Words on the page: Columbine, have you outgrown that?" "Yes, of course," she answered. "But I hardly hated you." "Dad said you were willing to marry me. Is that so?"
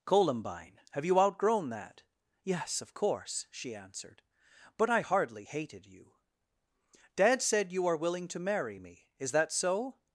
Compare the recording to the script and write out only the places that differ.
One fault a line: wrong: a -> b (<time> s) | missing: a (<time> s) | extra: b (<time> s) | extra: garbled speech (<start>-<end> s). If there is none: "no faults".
wrong: were -> are (7.9 s)